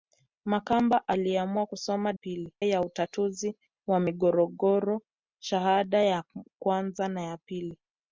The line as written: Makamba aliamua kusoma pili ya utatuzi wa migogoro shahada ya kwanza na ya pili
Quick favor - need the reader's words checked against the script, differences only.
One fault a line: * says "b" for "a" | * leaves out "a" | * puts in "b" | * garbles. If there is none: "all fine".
all fine